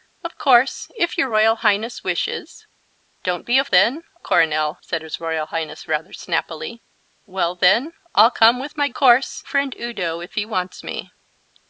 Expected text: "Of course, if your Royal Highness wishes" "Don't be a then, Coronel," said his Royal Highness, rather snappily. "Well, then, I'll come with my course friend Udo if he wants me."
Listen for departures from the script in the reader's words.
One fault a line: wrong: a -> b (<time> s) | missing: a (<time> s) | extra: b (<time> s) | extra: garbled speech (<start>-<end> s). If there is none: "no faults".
no faults